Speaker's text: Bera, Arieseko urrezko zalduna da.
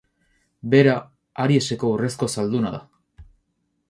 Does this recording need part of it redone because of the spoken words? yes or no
no